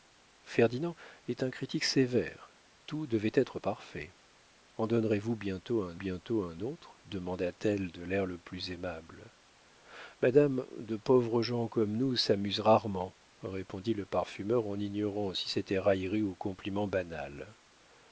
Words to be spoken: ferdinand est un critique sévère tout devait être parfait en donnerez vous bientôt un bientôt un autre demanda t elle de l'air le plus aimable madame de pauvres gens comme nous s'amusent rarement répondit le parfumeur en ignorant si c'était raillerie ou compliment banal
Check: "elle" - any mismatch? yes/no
no